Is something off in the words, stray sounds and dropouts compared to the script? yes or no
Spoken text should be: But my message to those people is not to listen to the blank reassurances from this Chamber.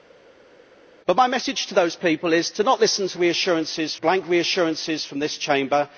yes